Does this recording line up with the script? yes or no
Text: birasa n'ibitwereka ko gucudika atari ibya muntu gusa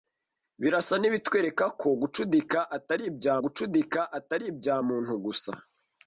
no